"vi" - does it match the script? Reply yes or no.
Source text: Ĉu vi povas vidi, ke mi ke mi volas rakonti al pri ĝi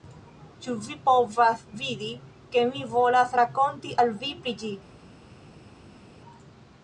yes